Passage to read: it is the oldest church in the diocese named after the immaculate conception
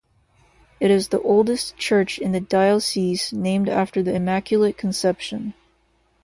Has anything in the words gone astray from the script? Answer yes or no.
no